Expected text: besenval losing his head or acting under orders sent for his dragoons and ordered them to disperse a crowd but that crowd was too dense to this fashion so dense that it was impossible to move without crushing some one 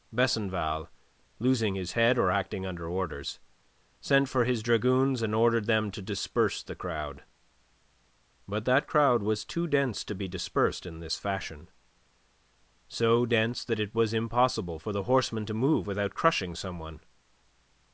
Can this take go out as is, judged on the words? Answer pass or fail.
fail